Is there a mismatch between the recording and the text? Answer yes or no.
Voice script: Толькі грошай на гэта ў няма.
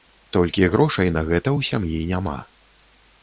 yes